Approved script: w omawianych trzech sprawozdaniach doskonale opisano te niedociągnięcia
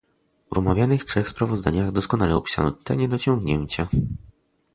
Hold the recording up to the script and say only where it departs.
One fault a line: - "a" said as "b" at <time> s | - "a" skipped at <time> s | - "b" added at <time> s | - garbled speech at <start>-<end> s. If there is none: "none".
none